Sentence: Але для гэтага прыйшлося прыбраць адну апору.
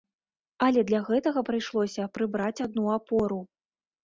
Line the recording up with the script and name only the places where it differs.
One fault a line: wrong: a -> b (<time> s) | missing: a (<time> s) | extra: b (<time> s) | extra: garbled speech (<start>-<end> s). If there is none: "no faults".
no faults